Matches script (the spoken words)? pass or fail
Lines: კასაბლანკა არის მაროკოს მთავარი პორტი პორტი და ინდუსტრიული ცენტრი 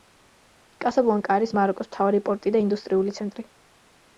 fail